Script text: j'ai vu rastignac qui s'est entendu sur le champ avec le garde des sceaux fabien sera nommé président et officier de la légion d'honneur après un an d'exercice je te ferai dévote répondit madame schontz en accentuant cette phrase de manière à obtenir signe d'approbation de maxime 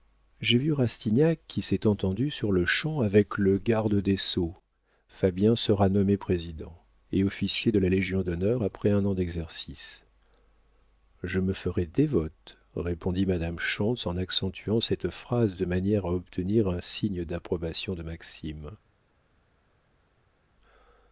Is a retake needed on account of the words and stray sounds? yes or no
yes